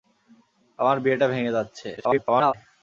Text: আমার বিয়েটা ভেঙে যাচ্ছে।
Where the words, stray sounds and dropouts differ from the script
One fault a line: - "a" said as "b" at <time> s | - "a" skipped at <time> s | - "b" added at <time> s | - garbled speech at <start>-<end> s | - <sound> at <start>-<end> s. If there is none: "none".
- garbled speech at 2.0-2.5 s